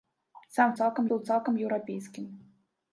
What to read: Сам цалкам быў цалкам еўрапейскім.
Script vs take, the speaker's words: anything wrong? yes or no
no